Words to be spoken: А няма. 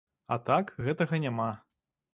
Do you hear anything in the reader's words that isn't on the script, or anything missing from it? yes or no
yes